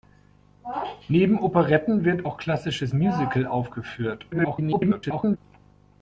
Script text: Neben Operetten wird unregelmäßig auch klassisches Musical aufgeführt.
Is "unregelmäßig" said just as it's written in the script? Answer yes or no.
no